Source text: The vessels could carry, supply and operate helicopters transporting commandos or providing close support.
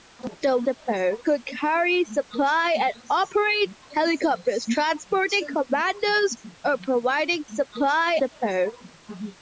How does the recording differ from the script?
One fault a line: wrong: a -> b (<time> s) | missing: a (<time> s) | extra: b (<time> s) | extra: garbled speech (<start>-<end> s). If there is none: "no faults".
wrong: vessels -> support (0.6 s)
wrong: close -> supply (7.5 s)